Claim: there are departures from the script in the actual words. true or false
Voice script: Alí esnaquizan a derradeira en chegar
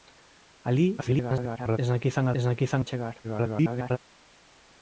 true